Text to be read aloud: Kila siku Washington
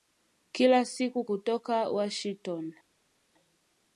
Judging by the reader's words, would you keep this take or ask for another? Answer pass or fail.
fail